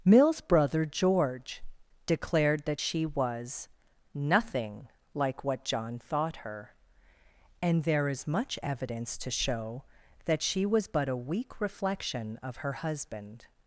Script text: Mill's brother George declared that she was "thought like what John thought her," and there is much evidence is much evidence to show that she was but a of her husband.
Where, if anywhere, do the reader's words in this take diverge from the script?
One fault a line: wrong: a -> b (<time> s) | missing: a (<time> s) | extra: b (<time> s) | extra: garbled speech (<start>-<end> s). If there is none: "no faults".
wrong: thought -> nothing (4.1 s)
missing: is much evidence (9.2 s)
extra: weak reflection (11.2 s)